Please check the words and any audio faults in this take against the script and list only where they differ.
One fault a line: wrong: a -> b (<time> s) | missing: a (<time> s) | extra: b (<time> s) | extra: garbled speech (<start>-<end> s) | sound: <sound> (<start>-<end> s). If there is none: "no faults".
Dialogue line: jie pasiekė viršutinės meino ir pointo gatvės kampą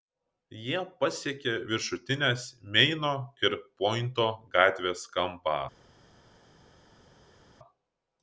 no faults